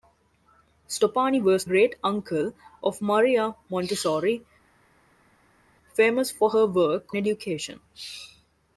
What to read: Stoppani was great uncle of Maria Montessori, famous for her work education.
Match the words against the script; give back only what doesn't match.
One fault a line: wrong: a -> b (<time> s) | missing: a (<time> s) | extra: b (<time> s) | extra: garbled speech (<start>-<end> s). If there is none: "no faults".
no faults